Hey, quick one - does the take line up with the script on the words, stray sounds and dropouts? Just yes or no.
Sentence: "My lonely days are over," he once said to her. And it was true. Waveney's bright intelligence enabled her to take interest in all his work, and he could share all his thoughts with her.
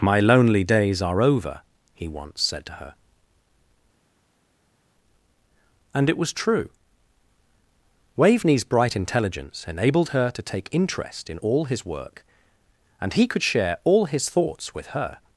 yes